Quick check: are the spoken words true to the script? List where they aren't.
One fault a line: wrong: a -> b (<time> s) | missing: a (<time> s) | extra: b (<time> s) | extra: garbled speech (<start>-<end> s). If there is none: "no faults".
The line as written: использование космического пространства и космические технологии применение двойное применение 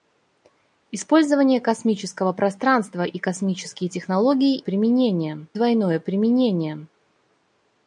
no faults